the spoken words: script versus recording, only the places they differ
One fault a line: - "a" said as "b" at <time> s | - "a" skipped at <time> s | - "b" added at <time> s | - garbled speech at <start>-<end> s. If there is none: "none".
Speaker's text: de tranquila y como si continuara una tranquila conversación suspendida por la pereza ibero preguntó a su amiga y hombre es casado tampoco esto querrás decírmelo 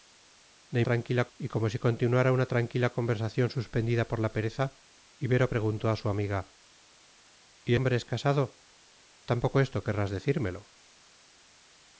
none